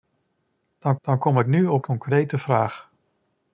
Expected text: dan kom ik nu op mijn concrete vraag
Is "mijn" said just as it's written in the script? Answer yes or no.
no